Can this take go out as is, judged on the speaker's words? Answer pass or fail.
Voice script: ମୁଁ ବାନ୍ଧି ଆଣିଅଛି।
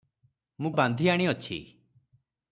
pass